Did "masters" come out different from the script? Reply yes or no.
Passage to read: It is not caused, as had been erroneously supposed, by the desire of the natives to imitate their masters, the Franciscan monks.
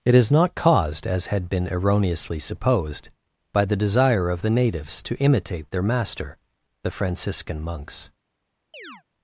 yes